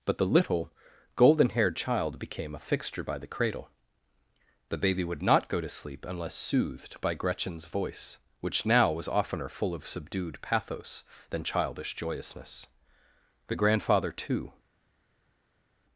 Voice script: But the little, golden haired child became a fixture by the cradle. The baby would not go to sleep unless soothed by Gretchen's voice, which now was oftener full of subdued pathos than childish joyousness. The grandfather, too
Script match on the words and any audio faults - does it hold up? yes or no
yes